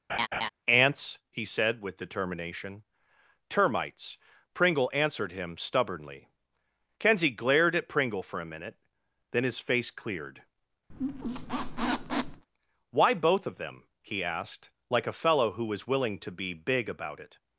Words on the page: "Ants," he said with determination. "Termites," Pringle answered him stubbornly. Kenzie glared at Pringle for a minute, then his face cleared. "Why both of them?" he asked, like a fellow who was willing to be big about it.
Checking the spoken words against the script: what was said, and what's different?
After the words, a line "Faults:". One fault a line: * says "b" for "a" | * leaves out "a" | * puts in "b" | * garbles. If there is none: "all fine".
"Ants," he said with determination. "Termites," Pringle answered him stubbornly. Kenzie glared at Pringle for a minute, then his face cleared. "Why both of them?" he asked, like a fellow who was willing to be big about it.
Faults:
all fine